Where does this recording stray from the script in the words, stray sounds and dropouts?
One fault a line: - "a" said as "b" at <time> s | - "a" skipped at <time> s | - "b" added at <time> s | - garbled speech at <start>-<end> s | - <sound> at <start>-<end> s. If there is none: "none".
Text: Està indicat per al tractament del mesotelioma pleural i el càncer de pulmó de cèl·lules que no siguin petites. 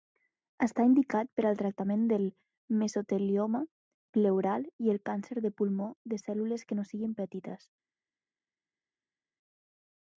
none